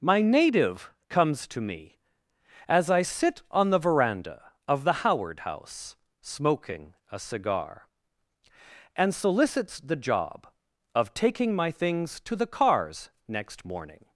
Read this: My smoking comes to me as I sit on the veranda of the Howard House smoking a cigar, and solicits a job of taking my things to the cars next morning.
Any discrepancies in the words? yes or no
yes